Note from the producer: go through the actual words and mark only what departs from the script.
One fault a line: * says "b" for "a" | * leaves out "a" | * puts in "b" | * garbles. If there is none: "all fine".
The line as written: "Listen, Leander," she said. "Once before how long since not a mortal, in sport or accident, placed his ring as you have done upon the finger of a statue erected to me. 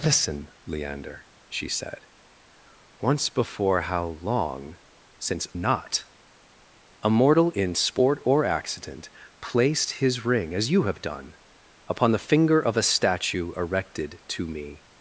all fine